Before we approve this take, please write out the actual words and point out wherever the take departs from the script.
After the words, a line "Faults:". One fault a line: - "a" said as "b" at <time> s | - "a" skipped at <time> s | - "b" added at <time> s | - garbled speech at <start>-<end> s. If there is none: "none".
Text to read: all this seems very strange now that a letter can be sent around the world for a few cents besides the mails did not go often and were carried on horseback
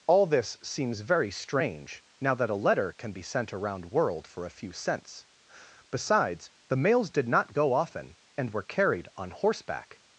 all this seems very strange now that a letter can be sent around world for a few cents besides the mails did not go often and were carried on horseback
Faults:
- "the" skipped at 3.9 s